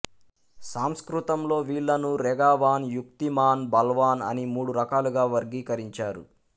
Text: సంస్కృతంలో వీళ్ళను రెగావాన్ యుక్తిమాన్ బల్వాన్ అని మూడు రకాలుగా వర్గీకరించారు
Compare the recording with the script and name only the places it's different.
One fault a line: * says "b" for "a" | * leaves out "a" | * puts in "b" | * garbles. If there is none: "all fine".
all fine